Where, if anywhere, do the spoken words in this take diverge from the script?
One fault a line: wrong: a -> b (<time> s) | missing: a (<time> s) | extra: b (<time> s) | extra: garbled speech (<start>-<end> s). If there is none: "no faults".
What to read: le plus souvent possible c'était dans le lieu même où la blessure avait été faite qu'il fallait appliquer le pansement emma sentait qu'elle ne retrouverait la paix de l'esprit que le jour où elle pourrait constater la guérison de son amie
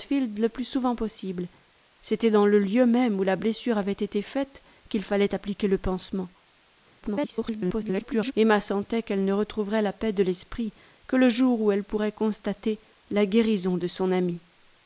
extra: garbled speech (7.0-8.3 s)